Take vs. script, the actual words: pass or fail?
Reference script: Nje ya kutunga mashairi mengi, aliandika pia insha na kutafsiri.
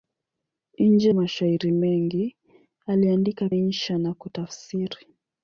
fail